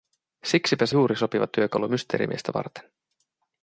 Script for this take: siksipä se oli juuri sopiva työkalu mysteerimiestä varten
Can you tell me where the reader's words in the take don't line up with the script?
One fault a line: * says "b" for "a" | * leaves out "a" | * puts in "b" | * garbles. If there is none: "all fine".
* leaves out "oli"